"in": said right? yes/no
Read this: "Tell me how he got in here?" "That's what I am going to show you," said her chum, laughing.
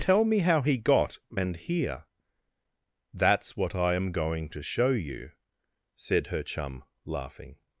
no